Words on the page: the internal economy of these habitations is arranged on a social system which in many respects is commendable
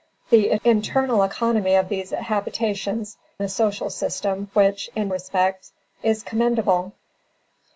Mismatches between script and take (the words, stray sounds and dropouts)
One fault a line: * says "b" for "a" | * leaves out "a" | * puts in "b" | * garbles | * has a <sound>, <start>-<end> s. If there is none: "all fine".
* leaves out "is arranged on"
* leaves out "many"